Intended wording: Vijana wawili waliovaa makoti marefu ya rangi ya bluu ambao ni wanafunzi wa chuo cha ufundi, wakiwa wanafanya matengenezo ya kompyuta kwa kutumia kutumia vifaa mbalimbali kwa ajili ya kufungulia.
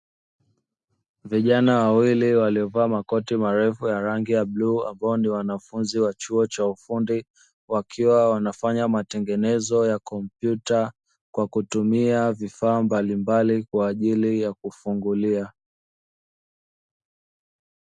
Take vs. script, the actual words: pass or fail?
fail